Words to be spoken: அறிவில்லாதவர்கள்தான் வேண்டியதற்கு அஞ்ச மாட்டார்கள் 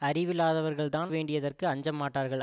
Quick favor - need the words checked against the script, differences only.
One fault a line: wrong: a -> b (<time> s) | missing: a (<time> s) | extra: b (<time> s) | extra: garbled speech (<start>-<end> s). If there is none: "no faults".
no faults